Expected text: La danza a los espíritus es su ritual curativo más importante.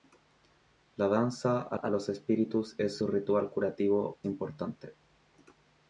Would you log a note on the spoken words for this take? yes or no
yes